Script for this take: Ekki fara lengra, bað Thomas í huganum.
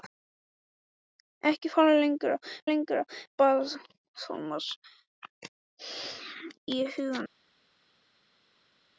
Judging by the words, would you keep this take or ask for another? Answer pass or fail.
fail